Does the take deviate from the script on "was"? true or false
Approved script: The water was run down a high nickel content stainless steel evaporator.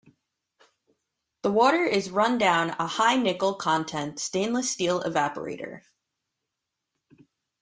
true